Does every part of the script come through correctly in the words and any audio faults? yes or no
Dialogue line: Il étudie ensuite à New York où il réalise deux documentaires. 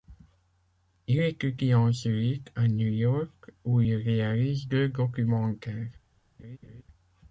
no